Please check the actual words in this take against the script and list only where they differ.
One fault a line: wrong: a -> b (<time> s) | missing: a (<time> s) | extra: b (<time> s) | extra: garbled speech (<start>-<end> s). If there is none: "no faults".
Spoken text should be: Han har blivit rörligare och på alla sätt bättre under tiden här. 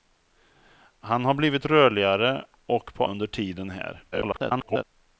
missing: alla sätt bättre (3.1 s)
extra: garbled speech (4.1-4.8 s)